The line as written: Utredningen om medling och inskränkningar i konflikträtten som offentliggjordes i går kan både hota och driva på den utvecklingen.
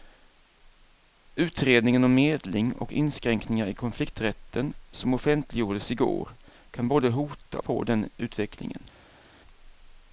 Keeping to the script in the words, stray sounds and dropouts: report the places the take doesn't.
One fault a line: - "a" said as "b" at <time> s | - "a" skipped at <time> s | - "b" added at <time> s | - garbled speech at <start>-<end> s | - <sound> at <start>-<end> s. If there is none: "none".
- "och driva" skipped at 7.6 s